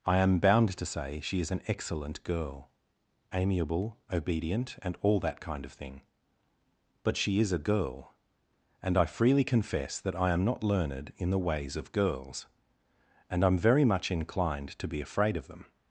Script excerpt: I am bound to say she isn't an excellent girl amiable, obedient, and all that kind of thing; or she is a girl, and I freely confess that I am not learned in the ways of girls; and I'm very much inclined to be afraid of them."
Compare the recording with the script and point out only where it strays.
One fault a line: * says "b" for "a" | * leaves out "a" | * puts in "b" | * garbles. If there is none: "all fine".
* says "is" for "isn't"
* says "but" for "or"